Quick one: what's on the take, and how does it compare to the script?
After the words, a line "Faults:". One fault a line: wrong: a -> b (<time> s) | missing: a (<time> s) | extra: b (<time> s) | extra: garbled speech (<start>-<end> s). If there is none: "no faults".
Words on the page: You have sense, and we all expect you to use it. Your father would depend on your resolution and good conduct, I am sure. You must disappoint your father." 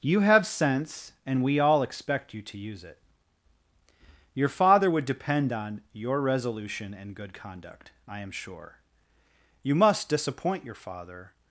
You have sense, and we all expect you to use it. Your father would depend on your resolution and good conduct, I am sure. You must disappoint your father."
Faults:
no faults